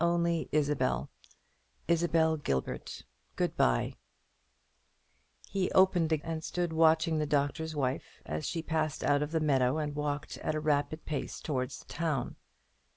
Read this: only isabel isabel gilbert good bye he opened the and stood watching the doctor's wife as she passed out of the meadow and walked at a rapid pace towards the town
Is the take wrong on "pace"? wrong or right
right